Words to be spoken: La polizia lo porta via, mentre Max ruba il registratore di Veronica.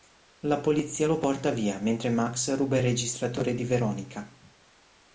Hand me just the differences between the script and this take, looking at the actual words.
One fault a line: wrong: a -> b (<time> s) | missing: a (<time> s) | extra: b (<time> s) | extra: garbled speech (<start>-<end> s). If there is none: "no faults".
no faults